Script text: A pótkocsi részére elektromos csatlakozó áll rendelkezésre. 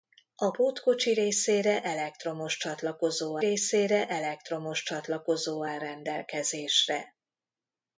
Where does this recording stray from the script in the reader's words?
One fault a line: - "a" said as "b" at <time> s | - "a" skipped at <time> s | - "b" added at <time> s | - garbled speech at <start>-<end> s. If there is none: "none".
- "részére elektromos csatlakozó" added at 3.4 s